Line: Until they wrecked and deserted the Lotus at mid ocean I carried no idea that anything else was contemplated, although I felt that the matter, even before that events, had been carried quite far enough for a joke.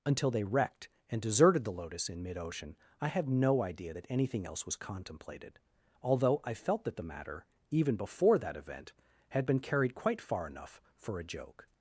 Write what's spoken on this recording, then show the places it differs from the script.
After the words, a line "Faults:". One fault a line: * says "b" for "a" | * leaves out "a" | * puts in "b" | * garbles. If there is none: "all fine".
Until they wrecked and deserted the Lotus in mid ocean I had no idea that anything else was contemplated, although I felt that the matter, even before that event, had been carried quite far enough for a joke.
Faults:
* says "in" for "at"
* says "had" for "carried"
* says "event" for "events"